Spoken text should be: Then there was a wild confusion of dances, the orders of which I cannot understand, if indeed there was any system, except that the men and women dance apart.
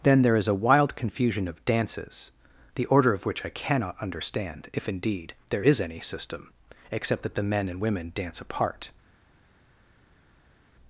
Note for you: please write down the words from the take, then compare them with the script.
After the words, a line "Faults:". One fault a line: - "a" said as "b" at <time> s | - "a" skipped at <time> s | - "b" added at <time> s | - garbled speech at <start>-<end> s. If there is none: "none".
Then there is a wild confusion of dances, the order of which I cannot understand, if indeed there is any system, except that the men and women dance apart.
Faults:
- "was" said as "is" at 0.3 s
- "orders" said as "order" at 2.9 s
- "was" said as "is" at 5.6 s